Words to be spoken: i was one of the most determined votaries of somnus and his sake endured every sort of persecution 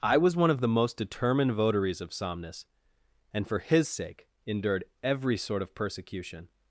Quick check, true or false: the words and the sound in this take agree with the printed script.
false